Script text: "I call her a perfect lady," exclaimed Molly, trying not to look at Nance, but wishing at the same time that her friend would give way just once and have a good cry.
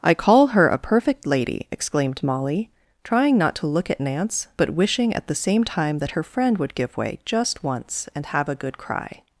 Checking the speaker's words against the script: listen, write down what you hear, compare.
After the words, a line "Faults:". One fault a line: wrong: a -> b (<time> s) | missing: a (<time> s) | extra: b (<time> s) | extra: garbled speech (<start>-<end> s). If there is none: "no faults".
"I call her a perfect lady," exclaimed Molly, trying not to look at Nance, but wishing at the same time that her friend would give way just once and have a good cry.
Faults:
no faults